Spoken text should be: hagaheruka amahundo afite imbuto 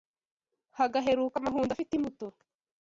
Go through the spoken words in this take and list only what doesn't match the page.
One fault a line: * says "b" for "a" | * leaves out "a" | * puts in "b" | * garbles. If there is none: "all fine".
all fine